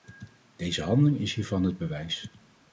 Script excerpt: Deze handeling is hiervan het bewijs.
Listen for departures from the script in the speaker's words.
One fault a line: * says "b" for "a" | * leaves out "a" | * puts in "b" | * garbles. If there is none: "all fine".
all fine